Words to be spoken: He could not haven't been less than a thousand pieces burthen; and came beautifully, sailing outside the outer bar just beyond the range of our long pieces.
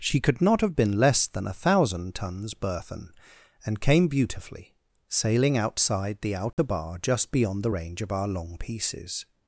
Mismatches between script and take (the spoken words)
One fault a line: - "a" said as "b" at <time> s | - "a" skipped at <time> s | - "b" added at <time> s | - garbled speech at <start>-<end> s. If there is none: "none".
- "He" said as "She" at 0.0 s
- "haven't" said as "have" at 0.6 s
- "pieces" said as "tons" at 2.1 s